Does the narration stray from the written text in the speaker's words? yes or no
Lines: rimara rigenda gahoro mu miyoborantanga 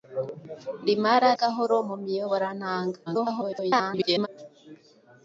yes